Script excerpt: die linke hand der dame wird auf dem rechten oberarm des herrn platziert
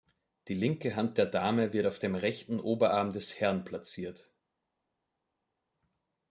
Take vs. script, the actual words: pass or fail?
pass